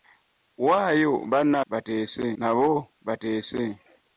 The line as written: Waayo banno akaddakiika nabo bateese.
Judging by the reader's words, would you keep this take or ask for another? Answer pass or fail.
fail